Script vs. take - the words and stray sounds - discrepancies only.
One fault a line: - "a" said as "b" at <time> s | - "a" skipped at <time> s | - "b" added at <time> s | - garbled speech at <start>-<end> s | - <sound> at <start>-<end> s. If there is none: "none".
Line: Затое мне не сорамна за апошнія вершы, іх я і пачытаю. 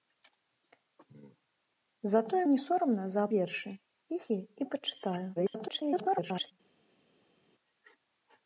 - "мне" skipped at 2.4 s
- "апошнія" skipped at 3.3 s
- garbled speech at 5.4-6.5 s